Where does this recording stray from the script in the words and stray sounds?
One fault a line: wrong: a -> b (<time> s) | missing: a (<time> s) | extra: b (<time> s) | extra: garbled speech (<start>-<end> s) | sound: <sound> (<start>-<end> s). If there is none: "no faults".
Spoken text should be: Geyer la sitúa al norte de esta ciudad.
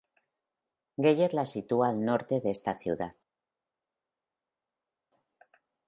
no faults